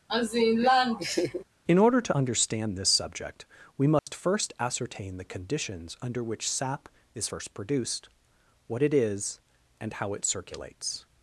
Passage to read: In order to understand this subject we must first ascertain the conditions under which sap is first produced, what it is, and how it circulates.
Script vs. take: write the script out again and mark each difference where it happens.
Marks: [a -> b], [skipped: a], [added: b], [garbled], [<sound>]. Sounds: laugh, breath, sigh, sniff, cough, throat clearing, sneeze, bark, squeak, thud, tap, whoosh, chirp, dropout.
[laugh] In order to understand this subject we must [dropout] first ascertain the conditions under which sap is first produced, what it is, and how it circulates.